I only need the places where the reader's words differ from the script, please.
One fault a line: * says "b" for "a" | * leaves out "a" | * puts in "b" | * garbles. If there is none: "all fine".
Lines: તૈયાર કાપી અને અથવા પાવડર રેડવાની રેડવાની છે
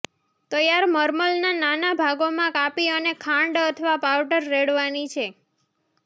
* puts in "મર્મલના નાના ભાગોમાં"
* puts in "ખાંડ"
* leaves out "રેડવાની"